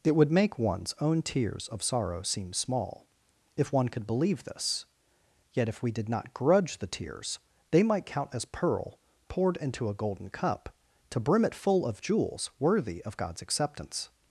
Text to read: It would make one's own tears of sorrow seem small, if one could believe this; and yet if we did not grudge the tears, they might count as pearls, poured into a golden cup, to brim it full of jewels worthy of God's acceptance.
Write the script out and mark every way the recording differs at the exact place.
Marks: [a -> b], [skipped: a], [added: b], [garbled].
It would make one's own tears of sorrow seem small, if one could believe this; [skipped: and] yet if we did not grudge the tears, they might count as [pearls, -> pearl] poured into a golden cup, to brim it full of jewels worthy of God's acceptance.